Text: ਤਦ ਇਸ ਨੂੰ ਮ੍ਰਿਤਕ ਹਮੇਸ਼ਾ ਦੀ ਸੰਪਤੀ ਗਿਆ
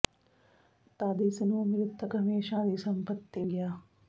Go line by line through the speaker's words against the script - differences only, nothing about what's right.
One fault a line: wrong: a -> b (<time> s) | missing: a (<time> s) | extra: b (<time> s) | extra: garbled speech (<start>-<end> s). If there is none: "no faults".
no faults